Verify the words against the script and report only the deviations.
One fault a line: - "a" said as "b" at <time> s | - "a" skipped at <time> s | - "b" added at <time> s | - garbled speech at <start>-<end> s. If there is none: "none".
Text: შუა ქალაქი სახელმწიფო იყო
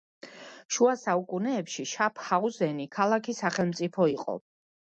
- "საუკუნეებში შაფჰაუზენი" added at 1.0 s